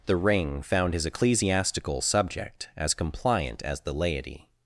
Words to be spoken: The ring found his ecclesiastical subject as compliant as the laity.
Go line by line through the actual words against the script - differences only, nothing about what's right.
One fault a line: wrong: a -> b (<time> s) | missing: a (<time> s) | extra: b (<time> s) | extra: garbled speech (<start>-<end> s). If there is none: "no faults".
no faults